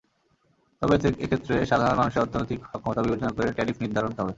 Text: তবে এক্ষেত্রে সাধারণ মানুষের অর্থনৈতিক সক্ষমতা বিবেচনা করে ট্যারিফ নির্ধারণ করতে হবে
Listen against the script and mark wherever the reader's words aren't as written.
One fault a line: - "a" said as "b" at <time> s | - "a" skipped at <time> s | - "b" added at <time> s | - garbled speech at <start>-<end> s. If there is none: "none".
- "করতে" skipped at 4.1 s